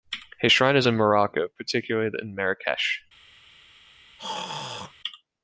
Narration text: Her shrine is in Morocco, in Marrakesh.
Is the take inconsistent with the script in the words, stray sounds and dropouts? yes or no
yes